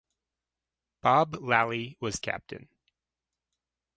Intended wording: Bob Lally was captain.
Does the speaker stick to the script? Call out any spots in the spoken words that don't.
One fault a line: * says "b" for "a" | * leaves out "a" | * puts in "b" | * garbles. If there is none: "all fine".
all fine